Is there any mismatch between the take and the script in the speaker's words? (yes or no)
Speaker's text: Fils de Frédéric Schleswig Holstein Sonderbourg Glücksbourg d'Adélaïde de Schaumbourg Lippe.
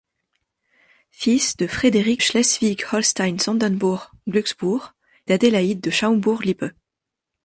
no